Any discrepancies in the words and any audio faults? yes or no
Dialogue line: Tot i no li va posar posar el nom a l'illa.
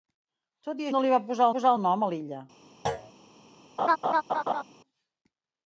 yes